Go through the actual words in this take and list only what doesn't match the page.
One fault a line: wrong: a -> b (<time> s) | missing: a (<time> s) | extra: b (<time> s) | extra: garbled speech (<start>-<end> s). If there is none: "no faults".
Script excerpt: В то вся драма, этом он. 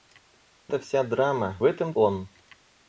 no faults